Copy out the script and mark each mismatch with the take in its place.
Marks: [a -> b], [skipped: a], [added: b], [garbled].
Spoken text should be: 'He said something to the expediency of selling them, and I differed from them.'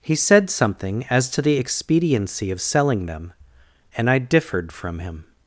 'He said something [added: as] to the expediency of selling them, and I differed from [them.' -> him]